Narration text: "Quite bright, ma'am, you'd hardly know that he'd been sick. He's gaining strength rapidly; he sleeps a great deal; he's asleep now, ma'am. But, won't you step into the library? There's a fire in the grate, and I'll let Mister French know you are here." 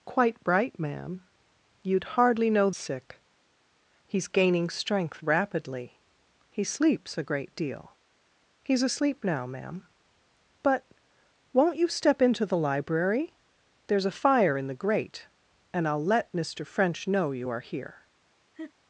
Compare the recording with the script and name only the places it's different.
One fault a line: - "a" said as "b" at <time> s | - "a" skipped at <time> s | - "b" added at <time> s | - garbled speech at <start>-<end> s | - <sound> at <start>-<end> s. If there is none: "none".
- "that he'd been" skipped at 2.7 s
- laugh at 18.5-18.7 s